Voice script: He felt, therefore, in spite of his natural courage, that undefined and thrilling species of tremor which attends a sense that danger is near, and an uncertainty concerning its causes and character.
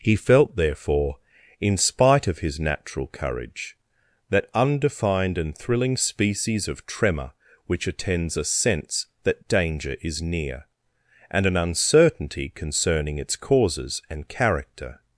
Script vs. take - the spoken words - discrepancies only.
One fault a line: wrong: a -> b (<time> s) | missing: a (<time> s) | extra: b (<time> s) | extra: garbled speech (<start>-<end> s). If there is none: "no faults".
no faults